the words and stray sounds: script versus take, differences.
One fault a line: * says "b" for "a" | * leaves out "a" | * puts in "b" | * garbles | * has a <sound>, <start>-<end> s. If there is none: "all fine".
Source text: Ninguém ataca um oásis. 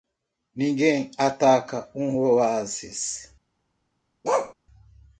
* has a bark, 4.2-4.5 s